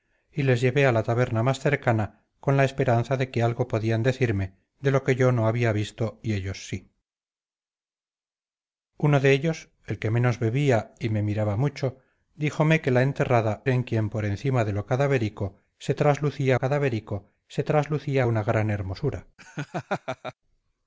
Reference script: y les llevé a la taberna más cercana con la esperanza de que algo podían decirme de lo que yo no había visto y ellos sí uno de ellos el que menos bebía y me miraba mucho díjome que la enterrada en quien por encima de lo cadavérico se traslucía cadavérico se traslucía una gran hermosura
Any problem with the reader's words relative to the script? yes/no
no